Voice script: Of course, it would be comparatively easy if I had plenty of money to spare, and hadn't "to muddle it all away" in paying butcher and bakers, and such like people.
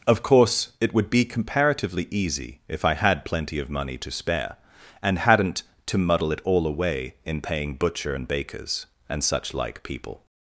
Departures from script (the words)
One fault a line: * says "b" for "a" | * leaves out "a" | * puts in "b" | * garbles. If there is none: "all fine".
all fine